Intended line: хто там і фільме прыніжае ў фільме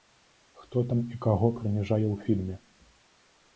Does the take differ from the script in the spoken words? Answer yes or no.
yes